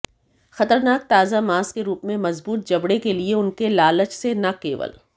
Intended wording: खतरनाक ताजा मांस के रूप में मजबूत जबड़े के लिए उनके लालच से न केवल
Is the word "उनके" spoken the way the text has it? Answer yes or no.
yes